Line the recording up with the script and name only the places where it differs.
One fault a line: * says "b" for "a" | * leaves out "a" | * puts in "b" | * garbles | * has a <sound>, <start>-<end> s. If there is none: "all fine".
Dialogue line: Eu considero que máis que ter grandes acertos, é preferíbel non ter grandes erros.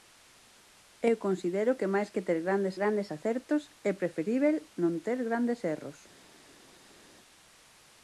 * puts in "grandes"